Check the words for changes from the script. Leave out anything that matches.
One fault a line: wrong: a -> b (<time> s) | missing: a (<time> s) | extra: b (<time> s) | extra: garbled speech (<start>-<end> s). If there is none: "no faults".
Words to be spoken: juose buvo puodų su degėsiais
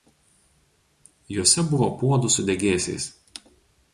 no faults